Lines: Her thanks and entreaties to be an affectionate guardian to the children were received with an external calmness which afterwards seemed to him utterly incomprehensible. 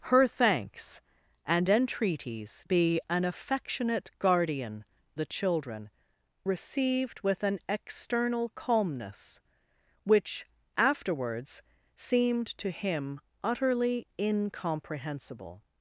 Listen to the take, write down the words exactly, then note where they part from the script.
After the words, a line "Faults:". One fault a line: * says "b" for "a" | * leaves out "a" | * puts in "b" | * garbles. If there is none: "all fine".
Her thanks and entreaties be an affectionate guardian the children received with an external calmness which afterwards seemed to him utterly incomprehensible.
Faults:
* leaves out "to"
* leaves out "to"
* leaves out "were"